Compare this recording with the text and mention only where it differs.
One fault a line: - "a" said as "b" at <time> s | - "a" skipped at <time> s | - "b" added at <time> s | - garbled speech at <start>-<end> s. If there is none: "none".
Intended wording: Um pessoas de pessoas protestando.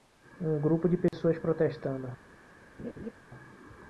- "pessoas" said as "grupo" at 0.6 s